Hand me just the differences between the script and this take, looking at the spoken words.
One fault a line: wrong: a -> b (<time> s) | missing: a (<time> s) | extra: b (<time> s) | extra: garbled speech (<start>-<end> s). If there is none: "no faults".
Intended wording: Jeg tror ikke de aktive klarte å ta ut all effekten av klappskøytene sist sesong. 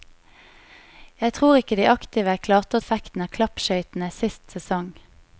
missing: ta ut all (2.8 s)